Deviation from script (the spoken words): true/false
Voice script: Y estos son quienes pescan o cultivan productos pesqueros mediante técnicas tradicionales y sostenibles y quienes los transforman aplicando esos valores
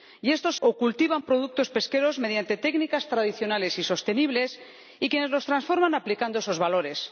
true